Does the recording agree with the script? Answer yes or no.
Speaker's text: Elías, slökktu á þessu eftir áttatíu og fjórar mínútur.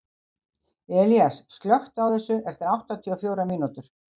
yes